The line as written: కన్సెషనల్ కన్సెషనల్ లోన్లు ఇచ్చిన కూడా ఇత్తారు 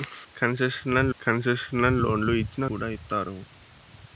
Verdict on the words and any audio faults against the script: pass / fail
pass